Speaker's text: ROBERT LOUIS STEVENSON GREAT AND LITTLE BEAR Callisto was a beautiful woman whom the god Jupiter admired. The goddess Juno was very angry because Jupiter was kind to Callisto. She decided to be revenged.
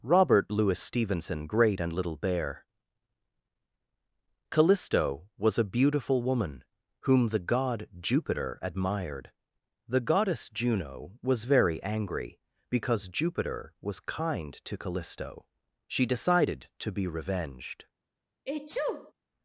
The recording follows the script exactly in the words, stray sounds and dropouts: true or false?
false